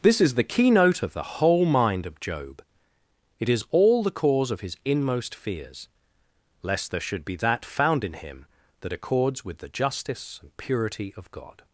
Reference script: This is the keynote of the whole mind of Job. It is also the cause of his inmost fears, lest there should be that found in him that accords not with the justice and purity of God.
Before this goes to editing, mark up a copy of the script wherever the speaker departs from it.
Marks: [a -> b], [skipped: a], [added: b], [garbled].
This is the keynote of the whole mind of Job. It is [also -> all] the cause of his inmost fears, lest there should be that found in him that accords [skipped: not] with the justice and purity of God.